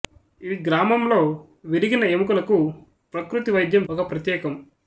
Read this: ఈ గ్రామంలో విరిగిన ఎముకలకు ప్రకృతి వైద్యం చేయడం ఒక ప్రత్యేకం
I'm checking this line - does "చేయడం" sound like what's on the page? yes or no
no